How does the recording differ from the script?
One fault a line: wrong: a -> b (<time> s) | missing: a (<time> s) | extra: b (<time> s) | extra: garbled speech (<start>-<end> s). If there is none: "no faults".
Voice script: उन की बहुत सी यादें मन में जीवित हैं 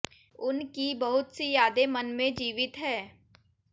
no faults